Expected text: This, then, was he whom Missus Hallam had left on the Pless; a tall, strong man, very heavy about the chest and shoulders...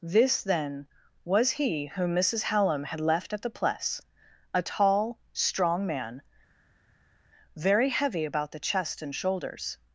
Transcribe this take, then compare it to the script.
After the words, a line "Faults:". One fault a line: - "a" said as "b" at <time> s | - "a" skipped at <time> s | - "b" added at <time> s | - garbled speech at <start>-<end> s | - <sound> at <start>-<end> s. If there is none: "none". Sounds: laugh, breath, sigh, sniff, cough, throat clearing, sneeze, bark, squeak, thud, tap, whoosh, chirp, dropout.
This, then, was he whom Missus Hallam had left at the Pless; a tall, strong man, very heavy about the chest and shoulders...
Faults:
- "on" said as "at" at 3.3 s